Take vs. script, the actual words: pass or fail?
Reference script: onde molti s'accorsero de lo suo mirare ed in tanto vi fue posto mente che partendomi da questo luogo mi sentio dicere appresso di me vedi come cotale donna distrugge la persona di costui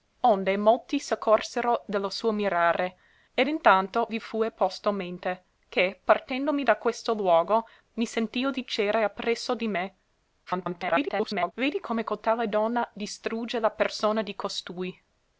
fail